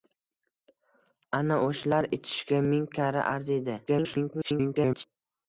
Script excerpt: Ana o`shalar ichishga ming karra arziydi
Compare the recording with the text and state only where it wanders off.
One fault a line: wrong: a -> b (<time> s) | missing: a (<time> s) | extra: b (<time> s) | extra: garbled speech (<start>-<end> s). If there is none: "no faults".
extra: garbled speech (3.9-5.0 s)